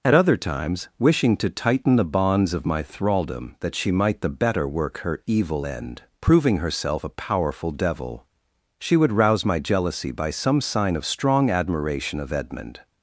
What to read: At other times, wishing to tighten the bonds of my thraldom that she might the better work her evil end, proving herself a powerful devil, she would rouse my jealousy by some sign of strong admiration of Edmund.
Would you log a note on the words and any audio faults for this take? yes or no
no